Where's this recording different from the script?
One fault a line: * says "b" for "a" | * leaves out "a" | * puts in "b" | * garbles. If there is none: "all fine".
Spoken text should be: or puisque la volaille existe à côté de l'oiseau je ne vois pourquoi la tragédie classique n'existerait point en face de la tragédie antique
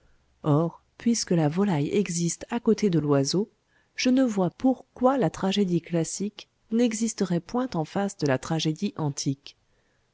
all fine